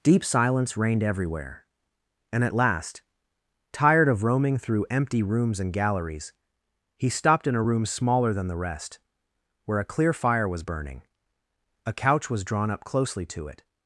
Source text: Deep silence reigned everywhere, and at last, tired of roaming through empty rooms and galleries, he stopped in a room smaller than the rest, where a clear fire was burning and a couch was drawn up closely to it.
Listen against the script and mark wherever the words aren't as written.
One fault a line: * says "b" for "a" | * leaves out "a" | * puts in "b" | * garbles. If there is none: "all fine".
* leaves out "and"